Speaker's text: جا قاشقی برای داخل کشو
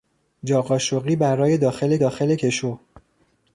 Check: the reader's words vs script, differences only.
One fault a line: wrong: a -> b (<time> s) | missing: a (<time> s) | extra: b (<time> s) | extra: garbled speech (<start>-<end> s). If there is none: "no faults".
extra: داخل (2.0 s)